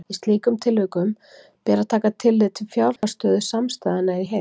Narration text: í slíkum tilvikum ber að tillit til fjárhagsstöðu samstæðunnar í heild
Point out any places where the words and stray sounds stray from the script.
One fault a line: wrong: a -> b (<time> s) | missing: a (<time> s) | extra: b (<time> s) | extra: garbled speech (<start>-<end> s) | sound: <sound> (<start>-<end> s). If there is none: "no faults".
extra: taka (1.9 s)
sound: dropout (3.0-3.0 s)